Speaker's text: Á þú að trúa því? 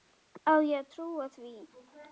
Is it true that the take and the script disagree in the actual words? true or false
true